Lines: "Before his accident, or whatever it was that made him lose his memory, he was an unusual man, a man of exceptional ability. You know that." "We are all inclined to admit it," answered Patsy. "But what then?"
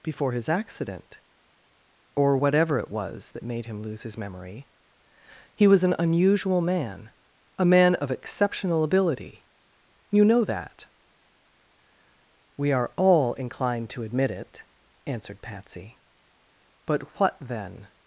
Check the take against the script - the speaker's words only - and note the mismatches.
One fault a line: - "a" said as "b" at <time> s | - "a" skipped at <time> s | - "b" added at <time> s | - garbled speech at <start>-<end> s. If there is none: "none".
none